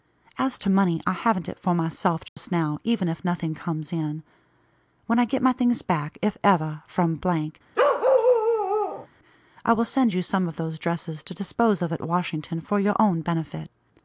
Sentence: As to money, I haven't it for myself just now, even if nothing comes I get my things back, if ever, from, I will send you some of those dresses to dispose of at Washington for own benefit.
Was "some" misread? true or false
false